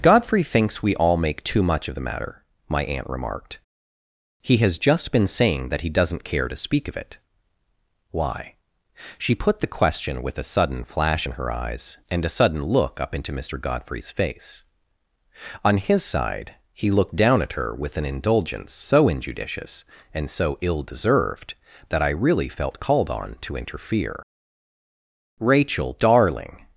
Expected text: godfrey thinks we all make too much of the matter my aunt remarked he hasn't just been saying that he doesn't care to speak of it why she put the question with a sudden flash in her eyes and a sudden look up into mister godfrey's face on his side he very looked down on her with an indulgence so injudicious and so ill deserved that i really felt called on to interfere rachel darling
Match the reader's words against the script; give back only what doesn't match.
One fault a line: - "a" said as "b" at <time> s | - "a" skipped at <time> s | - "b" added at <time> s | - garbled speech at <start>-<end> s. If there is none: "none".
- "hasn't" said as "has" at 4.6 s
- "very" skipped at 16.9 s
- "on" said as "at" at 17.4 s